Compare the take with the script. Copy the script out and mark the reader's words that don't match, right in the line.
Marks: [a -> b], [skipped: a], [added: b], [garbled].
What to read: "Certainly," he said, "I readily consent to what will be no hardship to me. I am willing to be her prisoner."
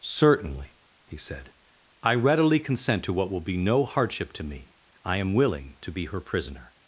"Certainly," he said, "I readily consent to what will be no hardship to me. I am willing to be her prisoner."